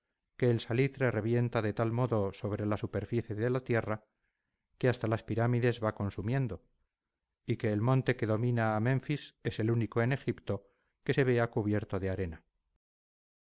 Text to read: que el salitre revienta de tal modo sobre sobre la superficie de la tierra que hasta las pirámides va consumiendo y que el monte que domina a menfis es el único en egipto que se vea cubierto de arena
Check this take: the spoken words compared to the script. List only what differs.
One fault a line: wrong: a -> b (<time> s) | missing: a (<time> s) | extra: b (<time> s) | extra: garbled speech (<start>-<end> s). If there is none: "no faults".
missing: sobre (2.7 s)